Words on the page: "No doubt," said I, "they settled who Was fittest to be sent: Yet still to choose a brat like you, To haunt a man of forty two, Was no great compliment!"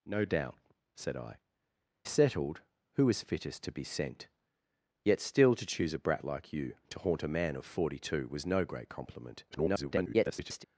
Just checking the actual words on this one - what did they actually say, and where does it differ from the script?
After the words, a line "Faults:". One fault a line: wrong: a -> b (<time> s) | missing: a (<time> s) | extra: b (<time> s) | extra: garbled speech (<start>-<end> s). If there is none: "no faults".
"No doubt," said I, "settled who Was fittest to be sent: Yet still to choose a brat like you, To haunt a man of forty two, Was no great compliment!" [garbled]
Faults:
missing: they (1.4 s)
extra: garbled speech (9.5-10.6 s)